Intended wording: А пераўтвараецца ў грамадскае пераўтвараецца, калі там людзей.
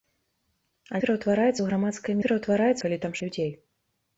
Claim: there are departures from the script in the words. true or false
false